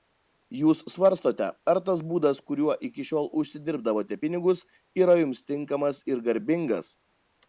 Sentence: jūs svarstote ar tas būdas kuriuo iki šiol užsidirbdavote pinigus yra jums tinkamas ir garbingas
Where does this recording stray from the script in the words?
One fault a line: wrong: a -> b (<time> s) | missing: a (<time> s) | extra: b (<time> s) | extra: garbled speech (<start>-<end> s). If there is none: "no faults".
no faults